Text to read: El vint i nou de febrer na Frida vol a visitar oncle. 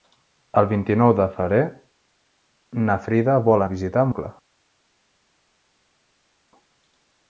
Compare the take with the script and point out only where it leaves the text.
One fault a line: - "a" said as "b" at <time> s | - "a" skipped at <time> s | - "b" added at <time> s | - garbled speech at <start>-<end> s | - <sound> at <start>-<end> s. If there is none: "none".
none